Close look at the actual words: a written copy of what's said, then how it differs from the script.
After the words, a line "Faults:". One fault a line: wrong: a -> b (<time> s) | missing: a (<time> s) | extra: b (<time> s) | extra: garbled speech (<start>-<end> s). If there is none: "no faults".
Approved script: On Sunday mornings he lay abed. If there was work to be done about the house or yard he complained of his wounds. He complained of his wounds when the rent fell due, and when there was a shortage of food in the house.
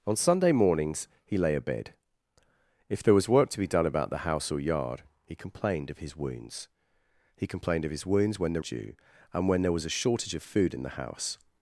On Sunday mornings he lay abed. If there was work to be done about the house or yard he complained of his wounds. He complained of his wounds when the due, and when there was a shortage of food in the house.
Faults:
missing: rent fell (8.6 s)